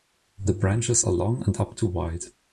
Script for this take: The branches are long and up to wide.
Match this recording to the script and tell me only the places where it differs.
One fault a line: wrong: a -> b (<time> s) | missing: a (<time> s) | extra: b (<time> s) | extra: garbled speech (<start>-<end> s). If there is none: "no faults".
no faults